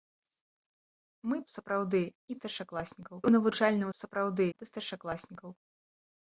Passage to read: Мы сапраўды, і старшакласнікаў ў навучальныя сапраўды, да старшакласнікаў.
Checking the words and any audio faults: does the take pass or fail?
pass